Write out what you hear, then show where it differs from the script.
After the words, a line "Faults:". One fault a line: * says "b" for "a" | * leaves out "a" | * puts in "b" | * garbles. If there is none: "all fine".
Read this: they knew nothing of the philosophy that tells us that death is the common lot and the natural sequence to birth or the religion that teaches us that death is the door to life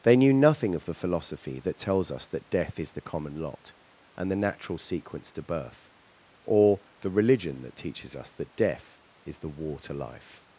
they knew nothing of the philosophy that tells us that death is the common lot and the natural sequence to birth or the religion that teaches us that death is the war to life
Faults:
* says "war" for "door"